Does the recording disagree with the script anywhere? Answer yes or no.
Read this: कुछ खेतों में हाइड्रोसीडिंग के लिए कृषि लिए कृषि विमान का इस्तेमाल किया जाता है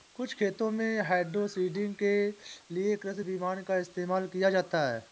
yes